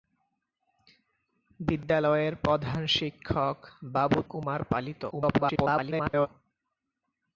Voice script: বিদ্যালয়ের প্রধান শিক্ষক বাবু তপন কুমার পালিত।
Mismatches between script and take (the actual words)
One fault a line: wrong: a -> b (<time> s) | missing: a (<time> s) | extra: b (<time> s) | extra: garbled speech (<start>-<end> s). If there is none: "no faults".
missing: তপন (4.2 s)
extra: garbled speech (5.1-6.3 s)